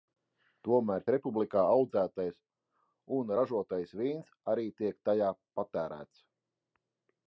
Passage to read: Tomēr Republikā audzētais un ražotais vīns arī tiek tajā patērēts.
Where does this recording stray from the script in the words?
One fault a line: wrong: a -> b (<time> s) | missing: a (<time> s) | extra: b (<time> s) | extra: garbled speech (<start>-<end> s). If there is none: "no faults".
no faults